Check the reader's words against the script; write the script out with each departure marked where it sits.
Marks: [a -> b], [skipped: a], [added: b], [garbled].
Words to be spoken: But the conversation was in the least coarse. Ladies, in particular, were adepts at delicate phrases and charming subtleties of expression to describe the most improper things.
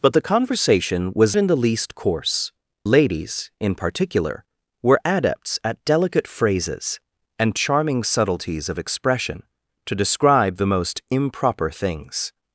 But the conversation was in the least coarse. Ladies, in particular, were adepts at delicate phrases and charming subtleties of expression to describe the most improper things.